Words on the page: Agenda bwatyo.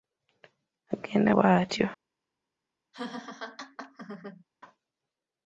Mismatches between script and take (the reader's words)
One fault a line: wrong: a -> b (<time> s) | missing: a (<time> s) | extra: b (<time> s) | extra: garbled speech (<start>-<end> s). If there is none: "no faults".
no faults